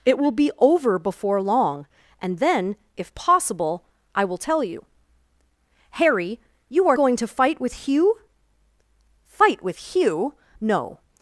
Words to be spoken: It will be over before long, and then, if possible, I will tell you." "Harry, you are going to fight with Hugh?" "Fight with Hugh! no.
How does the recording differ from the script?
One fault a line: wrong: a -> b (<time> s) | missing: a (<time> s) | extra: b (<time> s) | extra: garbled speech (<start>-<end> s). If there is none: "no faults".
no faults